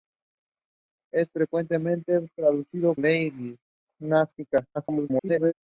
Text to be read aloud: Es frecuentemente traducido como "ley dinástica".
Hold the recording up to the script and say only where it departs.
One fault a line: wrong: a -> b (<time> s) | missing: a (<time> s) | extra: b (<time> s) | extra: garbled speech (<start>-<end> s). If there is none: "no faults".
missing: como (3.0 s)
extra: garbled speech (4.7-5.5 s)